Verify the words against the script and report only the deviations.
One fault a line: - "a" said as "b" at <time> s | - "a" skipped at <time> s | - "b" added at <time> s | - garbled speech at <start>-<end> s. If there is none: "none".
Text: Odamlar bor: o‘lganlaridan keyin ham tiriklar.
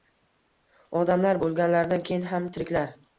- "bor" skipped at 1.4 s